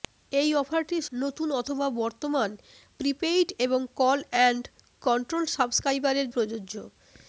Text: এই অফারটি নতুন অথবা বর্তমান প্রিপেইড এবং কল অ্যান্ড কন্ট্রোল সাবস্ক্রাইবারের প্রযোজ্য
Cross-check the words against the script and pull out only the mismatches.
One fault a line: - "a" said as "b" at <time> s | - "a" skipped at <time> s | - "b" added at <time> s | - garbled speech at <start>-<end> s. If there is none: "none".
none